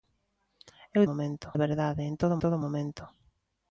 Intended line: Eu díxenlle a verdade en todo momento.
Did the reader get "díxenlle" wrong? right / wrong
wrong